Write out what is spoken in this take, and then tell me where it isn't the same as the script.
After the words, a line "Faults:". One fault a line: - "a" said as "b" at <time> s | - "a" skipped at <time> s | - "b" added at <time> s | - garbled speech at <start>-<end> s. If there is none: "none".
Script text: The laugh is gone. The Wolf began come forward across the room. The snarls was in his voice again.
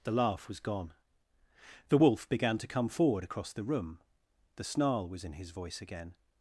The laugh was gone. The Wolf began to come forward across the room. The snarl was in his voice again.
Faults:
- "is" said as "was" at 0.5 s
- "to" added at 2.6 s
- "snarls" said as "snarl" at 4.6 s